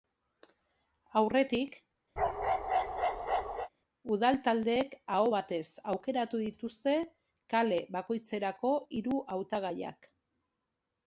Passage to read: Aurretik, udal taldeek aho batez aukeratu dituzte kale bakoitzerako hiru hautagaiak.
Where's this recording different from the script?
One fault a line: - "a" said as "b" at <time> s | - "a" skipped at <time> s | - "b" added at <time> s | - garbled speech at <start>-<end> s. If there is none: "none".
none